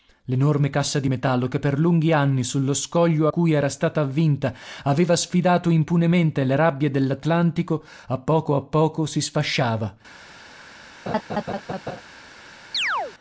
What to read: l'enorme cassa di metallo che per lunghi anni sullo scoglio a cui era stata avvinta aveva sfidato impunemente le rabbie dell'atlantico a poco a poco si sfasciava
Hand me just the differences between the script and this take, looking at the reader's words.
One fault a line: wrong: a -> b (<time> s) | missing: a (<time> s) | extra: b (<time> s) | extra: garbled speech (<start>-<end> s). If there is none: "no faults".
missing: a (3.3 s)